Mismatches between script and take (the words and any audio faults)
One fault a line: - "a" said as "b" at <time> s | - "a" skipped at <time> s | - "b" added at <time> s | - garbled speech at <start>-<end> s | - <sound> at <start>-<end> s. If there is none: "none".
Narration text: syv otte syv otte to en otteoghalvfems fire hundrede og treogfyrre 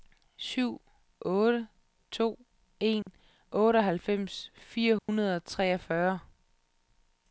- "syv otte" skipped at 1.7 s
- dropout at 3.0-3.1 s
- dropout at 5.0-5.1 s